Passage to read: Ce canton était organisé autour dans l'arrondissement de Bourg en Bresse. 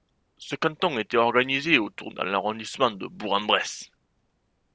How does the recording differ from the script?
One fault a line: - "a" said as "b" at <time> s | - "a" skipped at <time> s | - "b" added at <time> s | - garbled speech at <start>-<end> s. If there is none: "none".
none